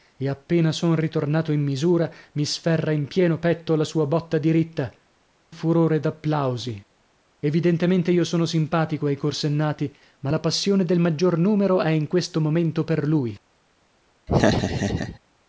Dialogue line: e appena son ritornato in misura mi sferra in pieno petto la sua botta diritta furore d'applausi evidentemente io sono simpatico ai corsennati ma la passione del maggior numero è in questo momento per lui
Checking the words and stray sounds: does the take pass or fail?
fail